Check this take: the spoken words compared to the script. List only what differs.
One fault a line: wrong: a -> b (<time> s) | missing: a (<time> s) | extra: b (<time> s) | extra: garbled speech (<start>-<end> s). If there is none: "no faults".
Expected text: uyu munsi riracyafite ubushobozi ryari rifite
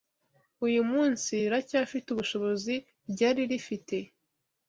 no faults